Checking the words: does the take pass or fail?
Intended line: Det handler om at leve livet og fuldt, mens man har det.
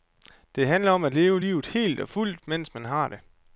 fail